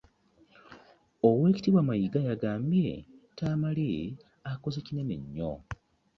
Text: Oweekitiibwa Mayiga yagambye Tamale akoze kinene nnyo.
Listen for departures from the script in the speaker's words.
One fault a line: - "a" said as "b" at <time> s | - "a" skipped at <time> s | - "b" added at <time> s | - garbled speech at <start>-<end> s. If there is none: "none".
none